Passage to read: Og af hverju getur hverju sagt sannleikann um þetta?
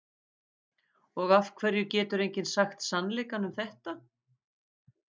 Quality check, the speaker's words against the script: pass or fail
fail